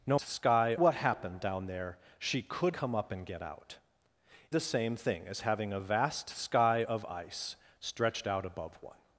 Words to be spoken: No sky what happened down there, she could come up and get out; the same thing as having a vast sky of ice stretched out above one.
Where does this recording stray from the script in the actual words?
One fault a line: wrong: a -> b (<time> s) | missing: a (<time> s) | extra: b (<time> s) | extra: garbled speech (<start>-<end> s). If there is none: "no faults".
no faults